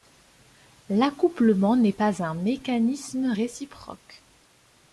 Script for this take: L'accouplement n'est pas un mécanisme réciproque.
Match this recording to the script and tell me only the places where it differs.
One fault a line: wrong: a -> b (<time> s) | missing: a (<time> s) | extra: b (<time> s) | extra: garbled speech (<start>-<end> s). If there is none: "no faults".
no faults